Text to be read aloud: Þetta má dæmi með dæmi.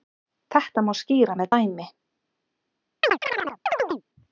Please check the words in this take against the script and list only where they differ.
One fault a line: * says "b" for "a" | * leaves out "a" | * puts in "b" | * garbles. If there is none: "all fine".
* says "skýra" for "dæmi"